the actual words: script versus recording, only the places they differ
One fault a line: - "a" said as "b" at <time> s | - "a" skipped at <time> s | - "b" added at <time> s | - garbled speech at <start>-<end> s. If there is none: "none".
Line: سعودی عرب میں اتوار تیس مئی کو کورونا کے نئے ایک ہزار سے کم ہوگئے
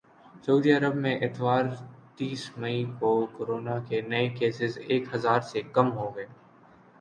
- "کیسز" added at 4.4 s